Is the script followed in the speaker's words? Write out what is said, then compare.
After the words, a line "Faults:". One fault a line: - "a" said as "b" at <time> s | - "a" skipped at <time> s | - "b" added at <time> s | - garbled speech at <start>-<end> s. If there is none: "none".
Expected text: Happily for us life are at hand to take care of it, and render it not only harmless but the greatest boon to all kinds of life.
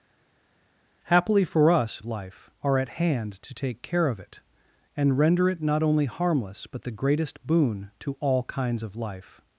Happily for us life are at hand to take care of it, and render it not only harmless but the greatest boon to all kinds of life.
Faults:
none